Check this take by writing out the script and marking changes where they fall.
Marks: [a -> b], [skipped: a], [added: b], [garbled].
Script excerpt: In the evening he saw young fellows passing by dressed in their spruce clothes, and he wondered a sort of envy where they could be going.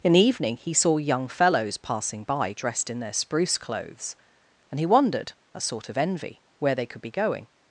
In the evening he saw young fellows passing by dressed in their spruce clothes, and he wondered a sort of envy where they could be going.